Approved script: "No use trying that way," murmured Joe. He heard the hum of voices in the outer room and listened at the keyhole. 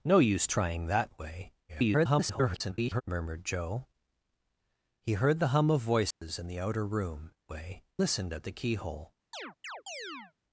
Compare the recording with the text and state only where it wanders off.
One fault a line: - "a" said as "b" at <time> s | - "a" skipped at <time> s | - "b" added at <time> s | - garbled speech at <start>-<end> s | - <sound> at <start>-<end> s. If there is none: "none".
- garbled speech at 1.7-3.0 s
- dropout at 6.1-6.2 s
- "and" said as "way" at 7.5 s
- chirp at 9.3-10.3 s